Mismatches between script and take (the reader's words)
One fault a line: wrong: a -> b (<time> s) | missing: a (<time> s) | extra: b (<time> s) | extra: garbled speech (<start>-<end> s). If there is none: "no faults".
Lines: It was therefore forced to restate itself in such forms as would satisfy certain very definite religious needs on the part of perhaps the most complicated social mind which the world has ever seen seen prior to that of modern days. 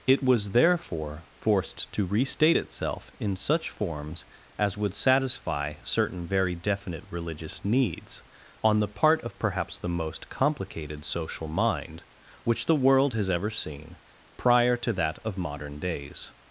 missing: seen (14.0 s)